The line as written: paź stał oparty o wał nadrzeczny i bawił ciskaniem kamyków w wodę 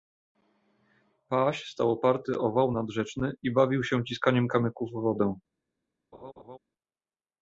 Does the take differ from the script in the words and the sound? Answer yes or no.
yes